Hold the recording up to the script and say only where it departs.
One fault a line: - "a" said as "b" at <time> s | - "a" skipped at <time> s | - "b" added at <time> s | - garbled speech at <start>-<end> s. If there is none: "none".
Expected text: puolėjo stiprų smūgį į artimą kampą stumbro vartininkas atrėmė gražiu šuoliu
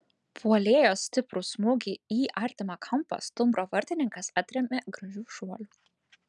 none